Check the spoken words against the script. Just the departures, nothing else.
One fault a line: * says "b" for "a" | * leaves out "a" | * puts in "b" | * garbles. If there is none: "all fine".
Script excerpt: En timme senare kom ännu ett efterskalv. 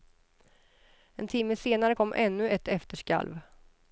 all fine